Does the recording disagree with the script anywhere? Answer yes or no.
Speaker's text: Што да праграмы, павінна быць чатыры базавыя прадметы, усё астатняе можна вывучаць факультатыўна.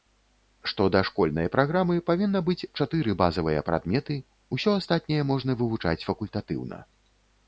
yes